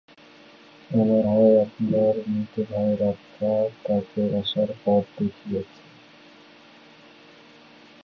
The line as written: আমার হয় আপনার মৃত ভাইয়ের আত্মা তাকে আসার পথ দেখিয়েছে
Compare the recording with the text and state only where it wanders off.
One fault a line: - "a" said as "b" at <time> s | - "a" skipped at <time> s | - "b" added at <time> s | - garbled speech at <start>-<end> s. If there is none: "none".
none